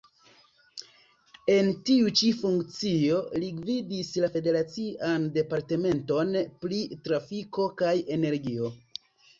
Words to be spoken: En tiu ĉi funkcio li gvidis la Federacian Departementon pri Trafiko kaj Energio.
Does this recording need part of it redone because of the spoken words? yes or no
no